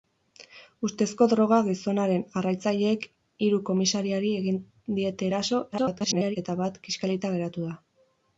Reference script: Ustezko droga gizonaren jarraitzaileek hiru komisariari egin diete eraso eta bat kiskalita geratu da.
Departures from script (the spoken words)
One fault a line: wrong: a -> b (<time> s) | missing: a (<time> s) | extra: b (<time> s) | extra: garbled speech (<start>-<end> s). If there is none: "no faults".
extra: garbled speech (5.7-6.4 s)